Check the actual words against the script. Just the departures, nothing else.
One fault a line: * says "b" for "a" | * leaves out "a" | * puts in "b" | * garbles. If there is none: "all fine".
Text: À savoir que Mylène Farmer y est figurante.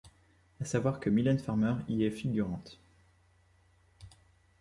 all fine